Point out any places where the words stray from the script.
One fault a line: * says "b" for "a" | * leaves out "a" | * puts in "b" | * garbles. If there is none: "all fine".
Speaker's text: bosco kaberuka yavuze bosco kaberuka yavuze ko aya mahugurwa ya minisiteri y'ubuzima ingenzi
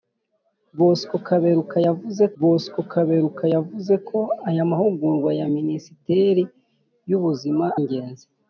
all fine